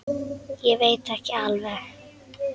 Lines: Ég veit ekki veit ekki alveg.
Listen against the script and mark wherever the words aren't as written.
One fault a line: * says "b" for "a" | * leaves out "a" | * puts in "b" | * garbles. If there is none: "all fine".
* leaves out "veit ekki"